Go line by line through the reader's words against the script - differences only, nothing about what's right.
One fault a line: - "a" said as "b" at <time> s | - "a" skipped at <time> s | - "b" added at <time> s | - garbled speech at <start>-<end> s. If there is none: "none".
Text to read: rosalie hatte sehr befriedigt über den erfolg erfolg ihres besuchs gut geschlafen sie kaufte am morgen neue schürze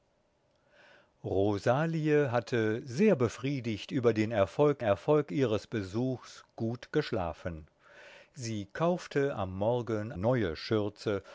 none